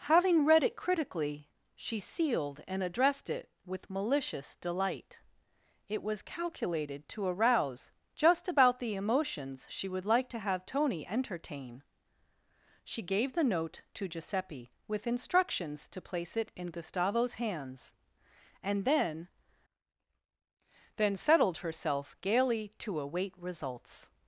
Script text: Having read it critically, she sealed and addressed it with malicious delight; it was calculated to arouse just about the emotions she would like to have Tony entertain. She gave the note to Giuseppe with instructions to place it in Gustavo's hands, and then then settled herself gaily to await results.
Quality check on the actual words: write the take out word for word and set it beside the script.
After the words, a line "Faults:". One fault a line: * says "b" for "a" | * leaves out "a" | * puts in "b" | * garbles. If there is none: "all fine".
Having read it critically, she sealed and addressed it with malicious delight; it was calculated to arouse just about the emotions she would like to have Tony entertain. She gave the note to Giuseppe with instructions to place it in Gustavo's hands, and then then settled herself gaily to await results.
Faults:
all fine